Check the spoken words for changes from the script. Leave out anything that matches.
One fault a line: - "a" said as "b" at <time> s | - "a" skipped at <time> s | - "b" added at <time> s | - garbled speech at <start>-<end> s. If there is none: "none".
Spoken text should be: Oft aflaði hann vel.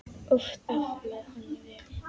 none